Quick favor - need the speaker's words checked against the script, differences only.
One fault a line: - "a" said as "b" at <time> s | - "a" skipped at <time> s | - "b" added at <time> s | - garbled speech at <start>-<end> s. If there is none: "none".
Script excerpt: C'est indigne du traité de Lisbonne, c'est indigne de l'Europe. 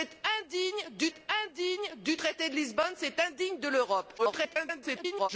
- "c'est indigne du" added at 1.1 s
- garbled speech at 4.2-5.3 s